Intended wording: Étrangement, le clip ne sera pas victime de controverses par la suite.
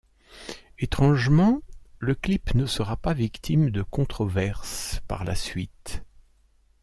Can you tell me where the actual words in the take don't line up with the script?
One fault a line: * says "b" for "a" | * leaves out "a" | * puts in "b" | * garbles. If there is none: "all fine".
all fine